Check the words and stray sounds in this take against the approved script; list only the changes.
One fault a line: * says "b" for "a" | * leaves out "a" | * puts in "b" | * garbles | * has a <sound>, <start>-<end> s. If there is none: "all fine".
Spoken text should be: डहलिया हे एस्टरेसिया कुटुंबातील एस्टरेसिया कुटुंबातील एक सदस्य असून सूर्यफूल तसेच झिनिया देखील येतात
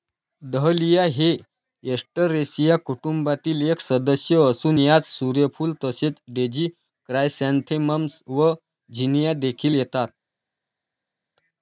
* leaves out "एस्टरेसिया कुटुंबातील"
* puts in "यात"
* puts in "डेझी क्रायसॅन्थेमम्स व"